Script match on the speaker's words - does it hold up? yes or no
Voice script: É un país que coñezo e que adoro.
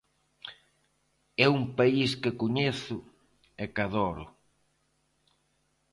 yes